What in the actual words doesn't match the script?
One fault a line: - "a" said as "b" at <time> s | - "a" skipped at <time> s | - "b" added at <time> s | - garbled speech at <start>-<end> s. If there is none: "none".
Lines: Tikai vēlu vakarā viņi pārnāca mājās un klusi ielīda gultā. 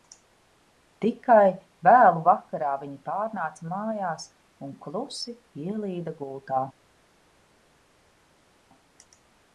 none